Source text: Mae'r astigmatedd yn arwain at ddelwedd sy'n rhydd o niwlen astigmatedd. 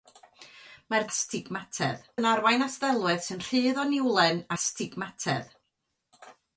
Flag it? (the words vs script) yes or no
no